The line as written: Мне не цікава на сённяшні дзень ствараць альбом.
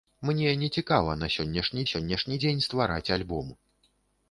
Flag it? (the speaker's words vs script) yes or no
yes